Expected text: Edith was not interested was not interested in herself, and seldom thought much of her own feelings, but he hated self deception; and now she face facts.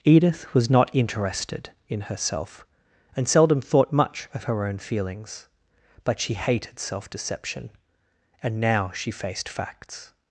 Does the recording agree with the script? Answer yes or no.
no